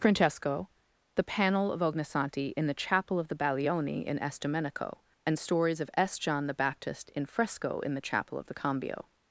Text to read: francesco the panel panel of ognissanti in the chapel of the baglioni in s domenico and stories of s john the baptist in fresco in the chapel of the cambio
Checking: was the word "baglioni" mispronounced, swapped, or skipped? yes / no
no